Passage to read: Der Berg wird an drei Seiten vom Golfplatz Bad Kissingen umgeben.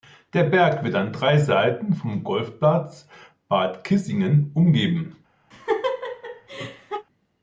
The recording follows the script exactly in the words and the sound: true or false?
false